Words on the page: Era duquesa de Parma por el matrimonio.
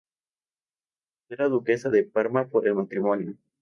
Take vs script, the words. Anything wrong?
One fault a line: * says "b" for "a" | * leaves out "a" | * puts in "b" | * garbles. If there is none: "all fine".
all fine